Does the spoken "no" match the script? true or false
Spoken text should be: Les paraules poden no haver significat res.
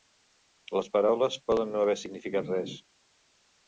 true